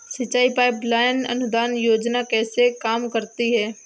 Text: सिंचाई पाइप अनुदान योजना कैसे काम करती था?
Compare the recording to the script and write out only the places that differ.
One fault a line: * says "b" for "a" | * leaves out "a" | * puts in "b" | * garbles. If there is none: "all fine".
* puts in "लाइन"
* says "है" for "था"